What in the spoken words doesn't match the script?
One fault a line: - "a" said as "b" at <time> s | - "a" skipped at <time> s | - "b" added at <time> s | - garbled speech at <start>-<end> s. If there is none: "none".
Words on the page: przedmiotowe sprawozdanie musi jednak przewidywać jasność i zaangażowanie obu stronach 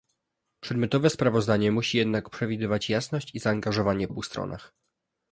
none